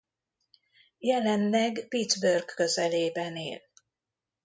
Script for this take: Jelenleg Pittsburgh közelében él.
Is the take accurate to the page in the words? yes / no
yes